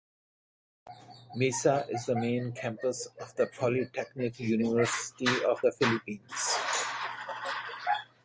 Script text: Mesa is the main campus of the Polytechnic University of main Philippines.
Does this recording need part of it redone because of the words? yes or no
yes